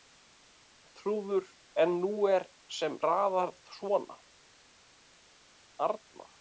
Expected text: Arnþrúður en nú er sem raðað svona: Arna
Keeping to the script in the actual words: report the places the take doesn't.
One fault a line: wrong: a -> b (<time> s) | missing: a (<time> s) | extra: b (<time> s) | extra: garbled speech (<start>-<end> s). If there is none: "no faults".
no faults